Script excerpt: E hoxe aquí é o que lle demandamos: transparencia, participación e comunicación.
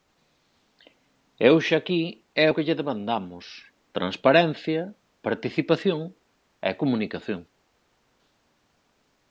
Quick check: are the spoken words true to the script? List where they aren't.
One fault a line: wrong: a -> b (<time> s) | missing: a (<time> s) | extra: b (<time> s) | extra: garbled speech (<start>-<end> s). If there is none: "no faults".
no faults